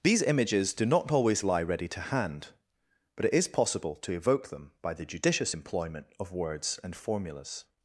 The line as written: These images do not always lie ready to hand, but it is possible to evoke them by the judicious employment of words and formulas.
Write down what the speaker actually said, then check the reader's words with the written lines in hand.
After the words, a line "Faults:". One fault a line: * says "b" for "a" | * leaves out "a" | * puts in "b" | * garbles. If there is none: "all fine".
These images do not always lie ready to hand, but it is possible to evoke them by the judicious employment of words and formulas.
Faults:
all fine